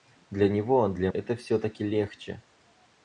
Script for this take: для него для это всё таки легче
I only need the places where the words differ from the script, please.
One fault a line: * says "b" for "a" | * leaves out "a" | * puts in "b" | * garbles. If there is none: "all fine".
all fine